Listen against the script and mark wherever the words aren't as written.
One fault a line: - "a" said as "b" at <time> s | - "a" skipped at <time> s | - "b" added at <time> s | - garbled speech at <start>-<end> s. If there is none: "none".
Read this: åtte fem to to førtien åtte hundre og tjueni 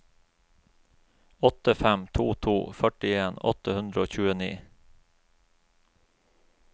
none